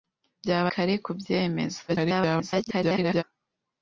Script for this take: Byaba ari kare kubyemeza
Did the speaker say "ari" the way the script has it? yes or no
no